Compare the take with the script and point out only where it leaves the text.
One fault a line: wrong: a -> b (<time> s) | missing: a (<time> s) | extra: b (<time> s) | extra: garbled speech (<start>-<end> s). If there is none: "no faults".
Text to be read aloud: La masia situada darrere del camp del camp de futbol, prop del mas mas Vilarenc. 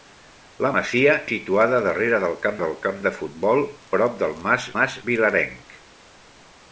no faults